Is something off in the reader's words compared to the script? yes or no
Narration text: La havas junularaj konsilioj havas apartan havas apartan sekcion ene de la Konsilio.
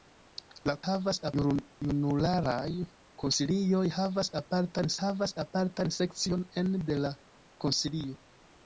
no